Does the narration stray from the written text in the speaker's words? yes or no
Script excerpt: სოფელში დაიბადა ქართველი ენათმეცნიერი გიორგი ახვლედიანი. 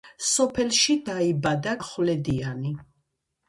yes